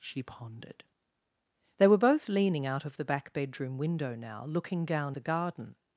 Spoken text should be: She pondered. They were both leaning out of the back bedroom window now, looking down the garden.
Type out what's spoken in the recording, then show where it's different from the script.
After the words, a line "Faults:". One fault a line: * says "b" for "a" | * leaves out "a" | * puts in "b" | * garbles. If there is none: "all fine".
She pondered. They were both leaning out of the back bedroom window now, looking down the garden.
Faults:
all fine